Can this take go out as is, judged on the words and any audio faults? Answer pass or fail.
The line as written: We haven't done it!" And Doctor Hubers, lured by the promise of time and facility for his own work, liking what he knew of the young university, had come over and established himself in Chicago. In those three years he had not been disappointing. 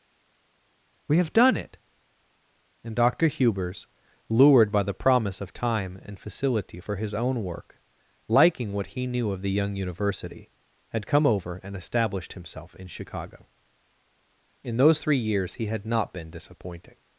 fail